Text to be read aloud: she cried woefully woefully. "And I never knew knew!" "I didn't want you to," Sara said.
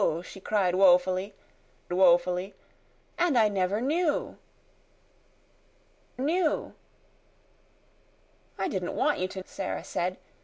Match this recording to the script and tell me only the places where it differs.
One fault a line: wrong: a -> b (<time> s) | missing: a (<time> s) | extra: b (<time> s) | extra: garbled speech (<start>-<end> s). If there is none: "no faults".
no faults